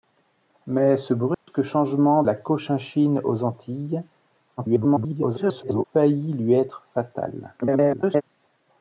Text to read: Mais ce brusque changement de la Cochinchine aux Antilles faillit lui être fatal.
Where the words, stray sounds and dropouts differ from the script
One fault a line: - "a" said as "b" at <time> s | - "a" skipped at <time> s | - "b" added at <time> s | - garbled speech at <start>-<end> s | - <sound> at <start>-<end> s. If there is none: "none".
- dropout at 1.3-1.5 s
- "de" skipped at 2.2 s
- garbled speech at 4.6-5.8 s
- garbled speech at 7.6-8.2 s